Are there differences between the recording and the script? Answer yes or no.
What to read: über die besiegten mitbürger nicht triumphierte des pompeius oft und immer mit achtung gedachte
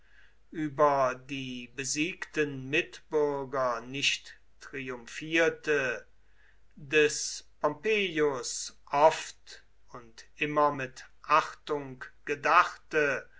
no